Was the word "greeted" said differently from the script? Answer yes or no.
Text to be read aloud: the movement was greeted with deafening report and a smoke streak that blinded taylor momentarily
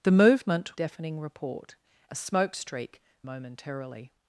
yes